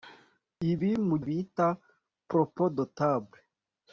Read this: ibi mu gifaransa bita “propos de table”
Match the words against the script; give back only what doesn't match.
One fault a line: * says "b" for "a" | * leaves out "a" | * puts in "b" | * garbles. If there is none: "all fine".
* leaves out "gifaransa"